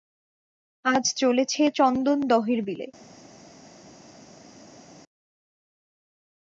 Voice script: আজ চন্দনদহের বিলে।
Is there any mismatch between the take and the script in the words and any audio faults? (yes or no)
yes